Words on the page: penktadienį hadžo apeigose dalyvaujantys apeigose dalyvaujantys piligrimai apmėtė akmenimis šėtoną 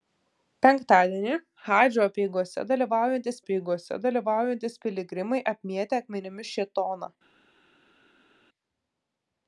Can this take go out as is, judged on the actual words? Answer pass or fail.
pass